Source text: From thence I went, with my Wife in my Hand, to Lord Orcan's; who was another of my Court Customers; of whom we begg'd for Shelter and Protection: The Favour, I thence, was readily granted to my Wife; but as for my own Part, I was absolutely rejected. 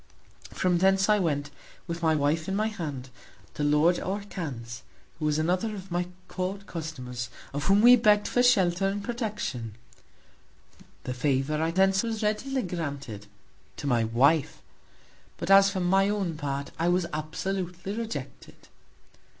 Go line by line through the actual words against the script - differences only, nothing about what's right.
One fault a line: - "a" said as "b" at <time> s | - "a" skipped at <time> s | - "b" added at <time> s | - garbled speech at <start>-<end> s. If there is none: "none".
none